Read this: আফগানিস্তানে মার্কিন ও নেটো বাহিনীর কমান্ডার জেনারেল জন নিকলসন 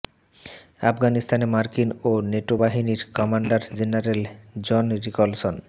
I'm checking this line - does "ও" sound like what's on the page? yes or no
yes